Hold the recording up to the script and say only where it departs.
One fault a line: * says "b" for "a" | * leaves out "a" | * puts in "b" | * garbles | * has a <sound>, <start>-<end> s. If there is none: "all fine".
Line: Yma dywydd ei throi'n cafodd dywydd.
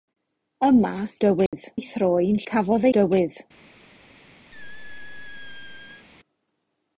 * has a dropout, 1.5-1.5 s
* has a squeak, 4.5-6.1 s